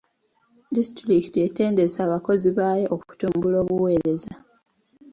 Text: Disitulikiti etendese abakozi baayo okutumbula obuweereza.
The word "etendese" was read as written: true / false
true